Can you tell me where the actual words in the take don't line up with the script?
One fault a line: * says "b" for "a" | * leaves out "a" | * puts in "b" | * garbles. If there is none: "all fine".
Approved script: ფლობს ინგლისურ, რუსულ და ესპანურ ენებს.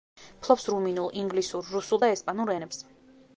* puts in "რუმინულ"